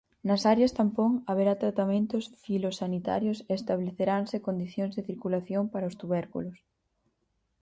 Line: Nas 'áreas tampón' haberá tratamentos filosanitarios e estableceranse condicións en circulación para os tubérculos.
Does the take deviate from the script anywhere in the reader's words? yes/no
yes